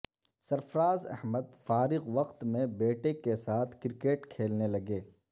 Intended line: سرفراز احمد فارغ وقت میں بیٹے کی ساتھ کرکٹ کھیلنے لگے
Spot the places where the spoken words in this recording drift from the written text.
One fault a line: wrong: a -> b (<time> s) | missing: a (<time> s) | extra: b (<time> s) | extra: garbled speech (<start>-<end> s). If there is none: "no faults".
wrong: کی -> کے (3.1 s)